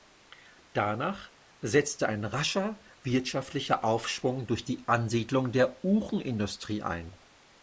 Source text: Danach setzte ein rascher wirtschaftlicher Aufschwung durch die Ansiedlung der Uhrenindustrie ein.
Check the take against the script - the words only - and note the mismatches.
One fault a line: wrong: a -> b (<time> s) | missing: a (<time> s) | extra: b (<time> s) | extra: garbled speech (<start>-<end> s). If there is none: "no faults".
no faults